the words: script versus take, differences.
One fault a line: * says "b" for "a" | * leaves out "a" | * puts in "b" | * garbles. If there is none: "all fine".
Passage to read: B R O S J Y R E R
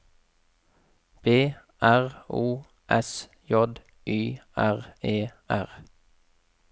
all fine